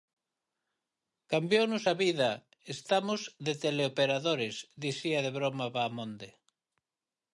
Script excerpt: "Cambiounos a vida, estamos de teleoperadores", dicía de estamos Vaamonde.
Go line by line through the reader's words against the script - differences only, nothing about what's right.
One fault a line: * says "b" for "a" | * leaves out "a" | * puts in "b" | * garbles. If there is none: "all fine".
* says "broma" for "estamos"